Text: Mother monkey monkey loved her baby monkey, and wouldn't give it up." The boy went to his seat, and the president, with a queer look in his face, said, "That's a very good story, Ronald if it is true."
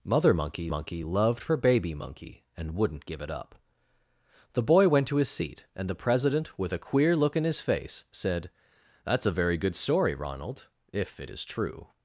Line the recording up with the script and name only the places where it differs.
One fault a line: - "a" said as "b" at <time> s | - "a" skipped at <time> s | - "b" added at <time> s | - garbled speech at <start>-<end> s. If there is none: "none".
none